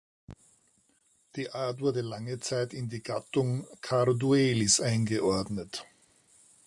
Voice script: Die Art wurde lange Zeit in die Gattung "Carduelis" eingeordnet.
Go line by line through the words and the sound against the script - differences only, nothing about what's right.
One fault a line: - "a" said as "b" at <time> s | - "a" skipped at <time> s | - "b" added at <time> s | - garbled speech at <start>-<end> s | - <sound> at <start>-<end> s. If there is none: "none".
none